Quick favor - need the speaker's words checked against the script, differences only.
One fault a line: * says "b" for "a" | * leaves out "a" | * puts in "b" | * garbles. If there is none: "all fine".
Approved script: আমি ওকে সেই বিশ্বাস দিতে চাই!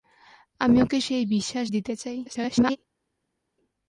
* garbles